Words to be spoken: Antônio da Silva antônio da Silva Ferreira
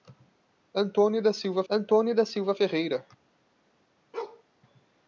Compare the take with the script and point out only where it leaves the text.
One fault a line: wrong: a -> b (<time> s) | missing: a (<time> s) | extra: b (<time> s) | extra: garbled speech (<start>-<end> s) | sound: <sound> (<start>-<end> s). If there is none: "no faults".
sound: bark (4.1-4.4 s)